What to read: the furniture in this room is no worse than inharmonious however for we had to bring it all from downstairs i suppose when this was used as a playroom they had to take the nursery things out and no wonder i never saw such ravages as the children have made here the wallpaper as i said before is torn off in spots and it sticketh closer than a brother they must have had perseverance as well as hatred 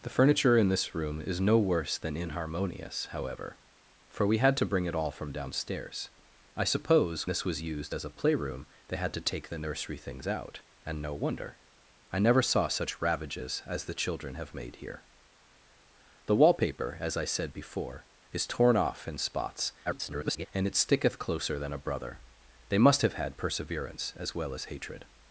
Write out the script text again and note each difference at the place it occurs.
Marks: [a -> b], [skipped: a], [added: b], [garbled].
the furniture in this room is no worse than inharmonious however for we had to bring it all from downstairs i suppose [skipped: when] this was used as a playroom they had to take the nursery things out and no wonder i never saw such ravages as the children have made here the wallpaper as i said before is torn off in spots [garbled] and it sticketh closer than a brother they must have had perseverance as well as hatred